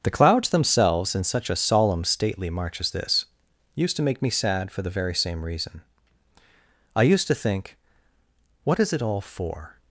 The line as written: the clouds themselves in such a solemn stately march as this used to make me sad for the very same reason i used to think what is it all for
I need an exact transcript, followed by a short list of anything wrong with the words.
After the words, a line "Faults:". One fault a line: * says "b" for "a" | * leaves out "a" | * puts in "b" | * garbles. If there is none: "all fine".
the clouds themselves in such a solemn stately march as this used to make me sad for the very same reason i used to think what is it all for
Faults:
all fine